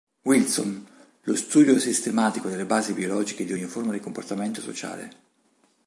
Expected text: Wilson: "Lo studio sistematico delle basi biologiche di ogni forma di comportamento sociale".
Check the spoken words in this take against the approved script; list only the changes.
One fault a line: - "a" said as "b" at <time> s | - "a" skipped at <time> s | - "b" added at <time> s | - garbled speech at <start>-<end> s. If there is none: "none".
none